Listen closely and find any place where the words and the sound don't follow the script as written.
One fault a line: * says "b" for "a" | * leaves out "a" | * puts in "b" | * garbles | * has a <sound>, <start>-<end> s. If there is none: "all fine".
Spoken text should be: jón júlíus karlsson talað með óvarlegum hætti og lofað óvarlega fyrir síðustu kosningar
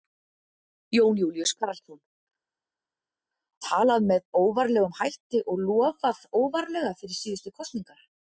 all fine